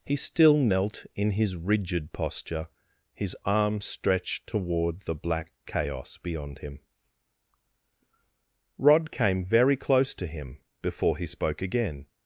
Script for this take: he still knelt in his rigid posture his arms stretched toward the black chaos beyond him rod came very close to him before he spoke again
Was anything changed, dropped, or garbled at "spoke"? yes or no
no